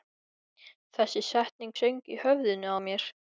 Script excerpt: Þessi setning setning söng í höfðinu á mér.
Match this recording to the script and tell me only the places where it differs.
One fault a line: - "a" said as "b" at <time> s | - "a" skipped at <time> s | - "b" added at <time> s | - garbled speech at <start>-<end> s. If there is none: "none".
- "setning" skipped at 1.8 s